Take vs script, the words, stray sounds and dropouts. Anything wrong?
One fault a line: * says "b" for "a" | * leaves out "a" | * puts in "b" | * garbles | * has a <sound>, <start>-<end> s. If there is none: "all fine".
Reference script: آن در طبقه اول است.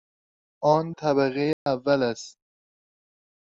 * leaves out "در"
* has a dropout, 1.5-1.7 s